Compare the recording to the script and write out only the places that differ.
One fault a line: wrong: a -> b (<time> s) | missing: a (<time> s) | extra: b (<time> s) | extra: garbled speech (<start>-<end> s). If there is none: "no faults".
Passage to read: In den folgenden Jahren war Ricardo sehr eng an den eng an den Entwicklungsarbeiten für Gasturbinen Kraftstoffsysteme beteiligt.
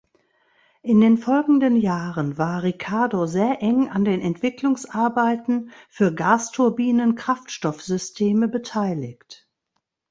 missing: eng an den (4.2 s)